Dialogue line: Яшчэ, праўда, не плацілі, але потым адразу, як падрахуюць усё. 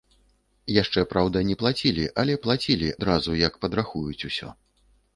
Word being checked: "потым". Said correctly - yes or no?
no